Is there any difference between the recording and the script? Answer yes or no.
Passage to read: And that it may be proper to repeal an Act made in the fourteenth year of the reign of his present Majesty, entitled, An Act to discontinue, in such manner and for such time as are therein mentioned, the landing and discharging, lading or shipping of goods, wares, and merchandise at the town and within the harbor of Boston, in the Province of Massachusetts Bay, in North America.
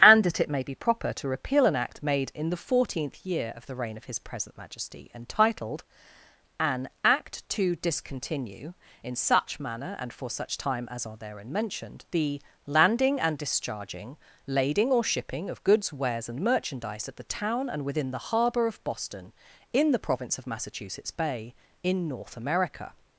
no